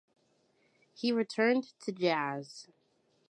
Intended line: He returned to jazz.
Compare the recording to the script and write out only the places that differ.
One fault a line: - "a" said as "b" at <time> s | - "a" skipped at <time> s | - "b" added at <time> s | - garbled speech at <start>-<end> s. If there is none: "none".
none